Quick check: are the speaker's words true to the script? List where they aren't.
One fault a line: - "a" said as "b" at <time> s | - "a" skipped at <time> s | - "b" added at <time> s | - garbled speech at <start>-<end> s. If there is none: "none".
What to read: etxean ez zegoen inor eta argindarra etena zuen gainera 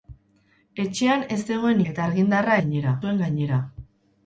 - "inor" skipped at 1.8 s
- "etena" said as "gainera" at 2.6 s